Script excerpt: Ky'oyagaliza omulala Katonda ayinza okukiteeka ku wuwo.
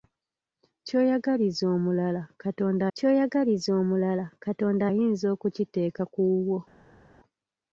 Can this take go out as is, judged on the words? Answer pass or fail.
fail